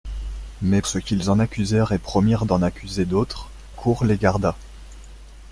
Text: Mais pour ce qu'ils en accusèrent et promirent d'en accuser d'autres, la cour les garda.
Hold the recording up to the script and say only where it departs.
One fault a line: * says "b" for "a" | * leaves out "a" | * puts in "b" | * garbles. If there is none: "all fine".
* leaves out "pour"
* leaves out "la"